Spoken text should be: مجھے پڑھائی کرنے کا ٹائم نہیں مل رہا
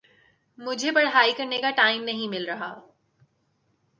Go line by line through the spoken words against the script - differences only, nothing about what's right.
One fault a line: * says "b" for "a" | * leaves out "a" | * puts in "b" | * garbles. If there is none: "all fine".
all fine